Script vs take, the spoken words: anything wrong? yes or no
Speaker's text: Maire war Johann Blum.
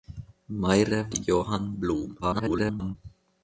yes